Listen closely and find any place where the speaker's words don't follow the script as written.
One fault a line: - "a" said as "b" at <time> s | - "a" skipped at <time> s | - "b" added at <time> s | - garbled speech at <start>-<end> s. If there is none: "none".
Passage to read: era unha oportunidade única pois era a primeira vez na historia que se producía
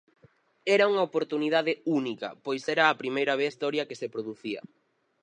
- "na" skipped at 3.5 s